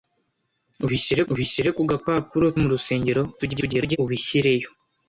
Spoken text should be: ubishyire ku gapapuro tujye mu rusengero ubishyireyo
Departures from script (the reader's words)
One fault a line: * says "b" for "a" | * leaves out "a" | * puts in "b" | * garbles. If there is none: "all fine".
* puts in "ubishyire"
* leaves out "tujye"
* garbles